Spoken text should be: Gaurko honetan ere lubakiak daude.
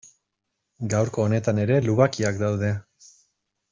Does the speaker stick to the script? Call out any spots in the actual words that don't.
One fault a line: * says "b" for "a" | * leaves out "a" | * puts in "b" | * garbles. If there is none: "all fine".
all fine